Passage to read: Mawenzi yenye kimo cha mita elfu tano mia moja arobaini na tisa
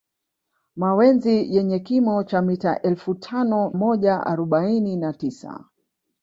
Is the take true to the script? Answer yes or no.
no